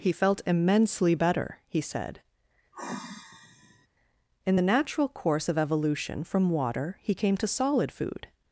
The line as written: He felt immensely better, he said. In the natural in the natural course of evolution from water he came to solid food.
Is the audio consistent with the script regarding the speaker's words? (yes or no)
no